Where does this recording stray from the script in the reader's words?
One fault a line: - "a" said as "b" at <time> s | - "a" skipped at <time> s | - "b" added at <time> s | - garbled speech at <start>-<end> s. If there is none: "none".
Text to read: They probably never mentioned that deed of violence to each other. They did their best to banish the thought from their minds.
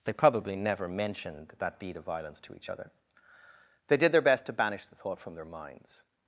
none